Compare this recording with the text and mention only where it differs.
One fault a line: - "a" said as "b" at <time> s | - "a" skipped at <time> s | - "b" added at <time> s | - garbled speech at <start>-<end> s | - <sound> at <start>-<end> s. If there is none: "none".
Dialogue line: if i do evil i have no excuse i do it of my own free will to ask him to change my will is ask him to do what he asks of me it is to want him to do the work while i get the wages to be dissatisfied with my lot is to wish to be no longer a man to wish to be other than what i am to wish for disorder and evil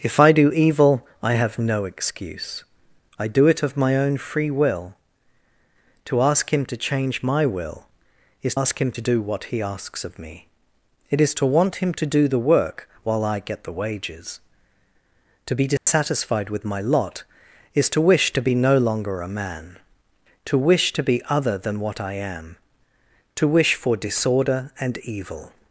- dropout at 15.8-15.9 s